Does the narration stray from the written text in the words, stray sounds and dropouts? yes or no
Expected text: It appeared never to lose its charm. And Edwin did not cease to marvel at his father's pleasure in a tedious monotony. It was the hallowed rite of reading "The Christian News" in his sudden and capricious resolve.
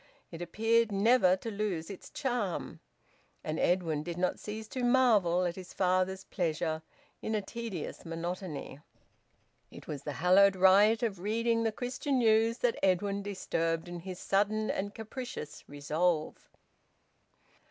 yes